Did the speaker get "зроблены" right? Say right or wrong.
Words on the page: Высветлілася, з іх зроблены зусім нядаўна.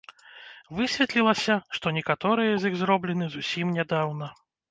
right